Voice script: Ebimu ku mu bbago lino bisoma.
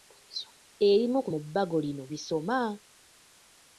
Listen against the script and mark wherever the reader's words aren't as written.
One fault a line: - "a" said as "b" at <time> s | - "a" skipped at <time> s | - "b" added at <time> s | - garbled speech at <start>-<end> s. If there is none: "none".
none